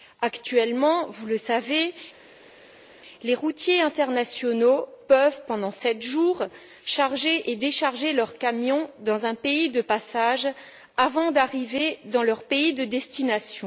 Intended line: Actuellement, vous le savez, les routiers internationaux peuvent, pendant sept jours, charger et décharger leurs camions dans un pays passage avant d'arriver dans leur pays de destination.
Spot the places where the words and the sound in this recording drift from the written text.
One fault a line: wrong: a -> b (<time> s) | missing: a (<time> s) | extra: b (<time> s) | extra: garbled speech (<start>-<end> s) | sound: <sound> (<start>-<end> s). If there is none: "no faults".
extra: de (9.7 s)